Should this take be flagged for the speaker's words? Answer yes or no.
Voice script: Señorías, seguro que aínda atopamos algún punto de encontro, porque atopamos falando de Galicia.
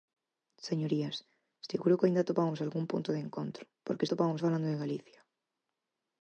no